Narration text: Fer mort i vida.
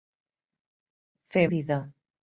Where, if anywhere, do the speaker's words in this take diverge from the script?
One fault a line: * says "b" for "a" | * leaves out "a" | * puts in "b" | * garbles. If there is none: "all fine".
* leaves out "mort"